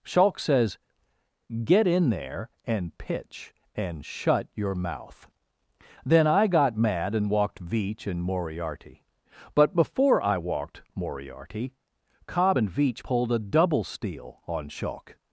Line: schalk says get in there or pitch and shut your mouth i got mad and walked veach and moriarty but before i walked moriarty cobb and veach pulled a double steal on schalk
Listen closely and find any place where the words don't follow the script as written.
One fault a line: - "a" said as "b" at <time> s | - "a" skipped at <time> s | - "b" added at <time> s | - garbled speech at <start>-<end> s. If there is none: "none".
- "or" said as "and" at 2.6 s
- "then" added at 6.0 s